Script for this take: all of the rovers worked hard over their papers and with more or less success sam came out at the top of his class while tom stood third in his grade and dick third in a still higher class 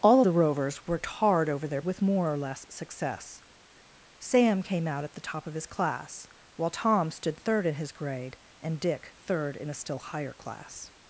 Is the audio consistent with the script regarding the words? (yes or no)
no